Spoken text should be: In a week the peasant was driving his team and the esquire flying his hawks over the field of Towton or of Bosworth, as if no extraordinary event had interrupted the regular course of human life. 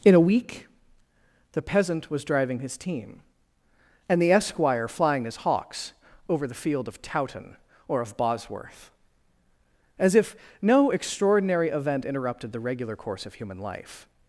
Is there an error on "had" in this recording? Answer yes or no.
yes